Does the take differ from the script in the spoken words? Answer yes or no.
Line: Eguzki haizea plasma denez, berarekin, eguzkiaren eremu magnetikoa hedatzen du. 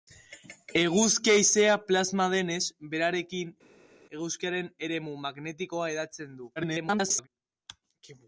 yes